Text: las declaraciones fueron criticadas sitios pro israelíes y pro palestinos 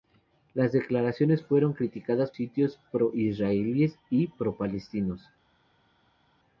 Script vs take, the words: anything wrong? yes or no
no